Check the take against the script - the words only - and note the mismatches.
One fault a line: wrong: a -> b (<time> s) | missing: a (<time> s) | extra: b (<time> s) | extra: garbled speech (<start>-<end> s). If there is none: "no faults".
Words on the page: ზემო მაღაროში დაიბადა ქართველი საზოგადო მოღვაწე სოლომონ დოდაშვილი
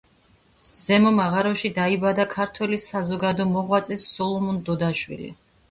no faults